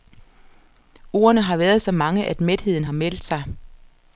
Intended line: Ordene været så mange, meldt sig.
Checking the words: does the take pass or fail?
fail